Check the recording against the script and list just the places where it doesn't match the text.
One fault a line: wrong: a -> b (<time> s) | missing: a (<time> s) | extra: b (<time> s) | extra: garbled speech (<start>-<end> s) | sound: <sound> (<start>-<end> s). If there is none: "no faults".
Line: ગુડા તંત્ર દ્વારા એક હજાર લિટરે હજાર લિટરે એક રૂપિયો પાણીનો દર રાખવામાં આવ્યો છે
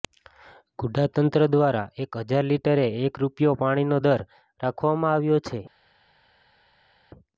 missing: હજાર લિટરે (2.9 s)